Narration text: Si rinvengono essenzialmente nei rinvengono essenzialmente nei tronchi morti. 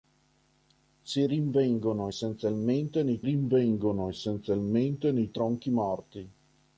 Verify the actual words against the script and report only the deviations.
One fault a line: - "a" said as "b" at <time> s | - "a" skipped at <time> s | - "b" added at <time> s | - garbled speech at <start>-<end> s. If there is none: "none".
none